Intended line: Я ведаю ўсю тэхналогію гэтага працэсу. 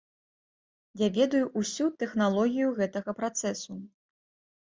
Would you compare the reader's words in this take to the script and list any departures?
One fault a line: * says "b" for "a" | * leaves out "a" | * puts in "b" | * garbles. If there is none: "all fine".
all fine